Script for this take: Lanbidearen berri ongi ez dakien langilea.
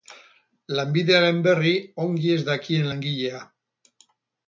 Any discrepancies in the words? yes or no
no